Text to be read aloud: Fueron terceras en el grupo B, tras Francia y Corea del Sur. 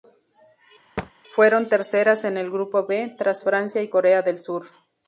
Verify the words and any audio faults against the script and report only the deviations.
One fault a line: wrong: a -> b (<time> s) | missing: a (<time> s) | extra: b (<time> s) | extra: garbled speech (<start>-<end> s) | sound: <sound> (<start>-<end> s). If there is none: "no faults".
sound: thud (1.0-1.1 s)